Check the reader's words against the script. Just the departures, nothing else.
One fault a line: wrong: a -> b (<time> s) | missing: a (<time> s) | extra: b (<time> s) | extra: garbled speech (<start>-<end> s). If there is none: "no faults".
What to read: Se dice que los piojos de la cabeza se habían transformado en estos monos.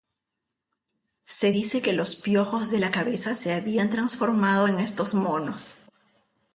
no faults